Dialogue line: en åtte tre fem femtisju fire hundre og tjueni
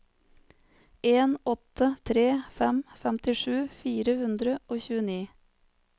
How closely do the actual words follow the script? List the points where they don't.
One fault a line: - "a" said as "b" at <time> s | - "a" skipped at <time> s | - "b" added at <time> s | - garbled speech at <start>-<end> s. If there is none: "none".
none